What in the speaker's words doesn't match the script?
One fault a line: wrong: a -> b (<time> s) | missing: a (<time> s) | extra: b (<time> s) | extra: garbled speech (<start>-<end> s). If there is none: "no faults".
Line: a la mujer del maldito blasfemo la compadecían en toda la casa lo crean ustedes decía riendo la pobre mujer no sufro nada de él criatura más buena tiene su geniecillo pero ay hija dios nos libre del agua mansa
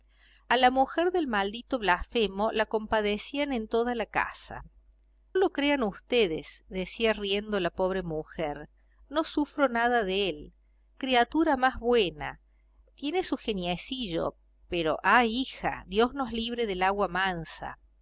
no faults